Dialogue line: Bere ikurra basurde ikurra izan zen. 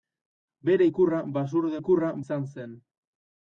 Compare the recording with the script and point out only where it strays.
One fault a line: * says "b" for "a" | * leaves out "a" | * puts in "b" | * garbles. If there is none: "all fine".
all fine